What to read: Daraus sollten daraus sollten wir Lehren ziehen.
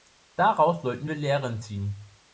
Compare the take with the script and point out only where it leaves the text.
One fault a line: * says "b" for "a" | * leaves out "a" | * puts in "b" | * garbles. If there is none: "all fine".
* leaves out "daraus sollten"